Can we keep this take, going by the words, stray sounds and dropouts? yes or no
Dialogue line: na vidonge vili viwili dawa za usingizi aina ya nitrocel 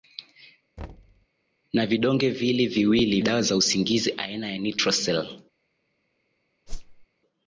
no